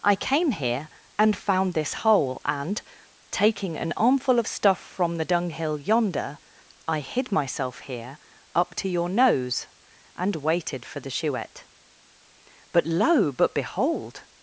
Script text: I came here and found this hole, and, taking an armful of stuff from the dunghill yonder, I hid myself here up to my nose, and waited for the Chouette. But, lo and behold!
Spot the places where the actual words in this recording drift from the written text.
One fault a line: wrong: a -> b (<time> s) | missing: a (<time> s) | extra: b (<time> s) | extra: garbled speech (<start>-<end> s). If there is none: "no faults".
wrong: my -> your (8.9 s)
wrong: and -> but (13.3 s)